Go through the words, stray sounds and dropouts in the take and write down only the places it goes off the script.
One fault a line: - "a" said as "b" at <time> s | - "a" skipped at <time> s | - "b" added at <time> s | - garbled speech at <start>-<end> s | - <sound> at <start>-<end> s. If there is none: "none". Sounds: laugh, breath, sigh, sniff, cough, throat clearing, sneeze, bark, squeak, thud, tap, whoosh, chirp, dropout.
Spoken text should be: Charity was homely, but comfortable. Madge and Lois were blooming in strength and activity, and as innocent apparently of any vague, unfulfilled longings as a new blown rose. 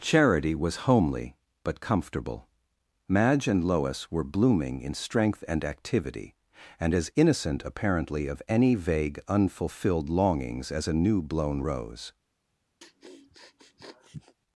- sniff at 12.8-14.4 s